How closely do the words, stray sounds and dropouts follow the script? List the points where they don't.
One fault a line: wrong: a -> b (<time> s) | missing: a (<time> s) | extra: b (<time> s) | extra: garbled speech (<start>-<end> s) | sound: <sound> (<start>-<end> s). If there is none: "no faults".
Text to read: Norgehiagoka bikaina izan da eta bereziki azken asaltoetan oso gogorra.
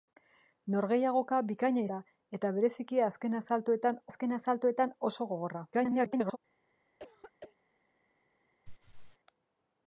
missing: izan (1.8 s)
extra: azken asaltoetan (4.1 s)
extra: garbled speech (5.7-6.4 s)
sound: throat clearing (7.0-7.6 s)
sound: laugh (8.7-9.2 s)